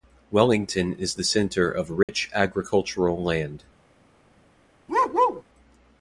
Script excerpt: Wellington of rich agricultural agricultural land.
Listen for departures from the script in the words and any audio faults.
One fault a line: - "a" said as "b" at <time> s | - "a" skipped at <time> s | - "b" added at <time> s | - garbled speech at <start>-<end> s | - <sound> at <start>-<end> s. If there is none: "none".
- "is the centre" added at 0.9 s
- dropout at 2.0-2.1 s
- "agricultural" skipped at 3.2 s
- bark at 4.9-5.4 s